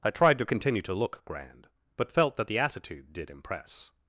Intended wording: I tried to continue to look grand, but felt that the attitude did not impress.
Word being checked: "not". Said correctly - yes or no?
no